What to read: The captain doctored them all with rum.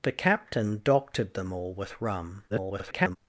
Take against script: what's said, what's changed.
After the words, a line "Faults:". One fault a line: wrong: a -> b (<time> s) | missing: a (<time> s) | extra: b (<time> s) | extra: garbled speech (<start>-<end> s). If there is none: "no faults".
The captain doctored them all with rum. [garbled]
Faults:
extra: garbled speech (2.5-3.2 s)